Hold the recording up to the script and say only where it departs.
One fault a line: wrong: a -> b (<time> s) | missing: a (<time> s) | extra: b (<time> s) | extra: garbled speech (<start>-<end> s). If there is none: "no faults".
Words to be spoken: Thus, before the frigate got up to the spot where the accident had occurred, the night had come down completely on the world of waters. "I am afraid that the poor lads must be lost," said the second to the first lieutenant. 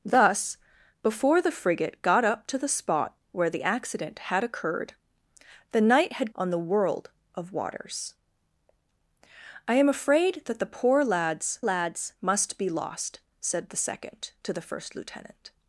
missing: come down completely (6.3 s)
extra: lads (11.6 s)